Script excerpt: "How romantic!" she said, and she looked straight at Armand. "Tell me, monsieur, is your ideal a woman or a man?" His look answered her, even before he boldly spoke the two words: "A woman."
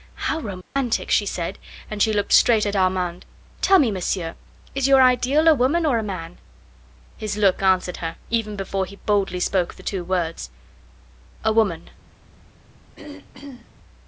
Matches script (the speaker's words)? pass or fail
pass